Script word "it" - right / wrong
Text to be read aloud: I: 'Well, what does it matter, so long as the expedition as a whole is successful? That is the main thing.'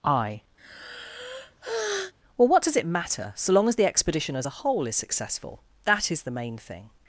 right